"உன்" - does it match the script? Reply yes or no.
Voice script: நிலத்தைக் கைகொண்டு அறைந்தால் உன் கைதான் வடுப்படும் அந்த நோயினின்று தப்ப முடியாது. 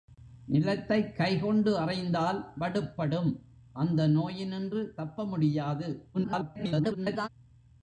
no